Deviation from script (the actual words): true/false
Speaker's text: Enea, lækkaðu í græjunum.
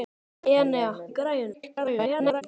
true